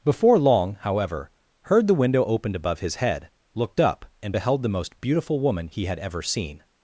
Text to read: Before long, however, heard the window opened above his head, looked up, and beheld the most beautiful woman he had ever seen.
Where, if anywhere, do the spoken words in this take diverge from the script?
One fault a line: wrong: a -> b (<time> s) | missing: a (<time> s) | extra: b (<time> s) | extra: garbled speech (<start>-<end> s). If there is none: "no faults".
no faults